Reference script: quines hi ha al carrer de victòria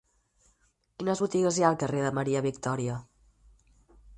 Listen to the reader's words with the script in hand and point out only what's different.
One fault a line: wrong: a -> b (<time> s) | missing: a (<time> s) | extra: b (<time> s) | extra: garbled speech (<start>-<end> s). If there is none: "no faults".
extra: botigues (1.2 s)
extra: maria (2.2 s)